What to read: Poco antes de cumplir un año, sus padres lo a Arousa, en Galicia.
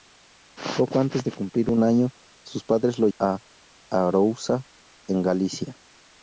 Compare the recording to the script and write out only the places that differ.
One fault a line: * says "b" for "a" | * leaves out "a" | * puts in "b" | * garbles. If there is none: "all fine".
all fine